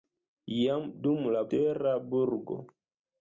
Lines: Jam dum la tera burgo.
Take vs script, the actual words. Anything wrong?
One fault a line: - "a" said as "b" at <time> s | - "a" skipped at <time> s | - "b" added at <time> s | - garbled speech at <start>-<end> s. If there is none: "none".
none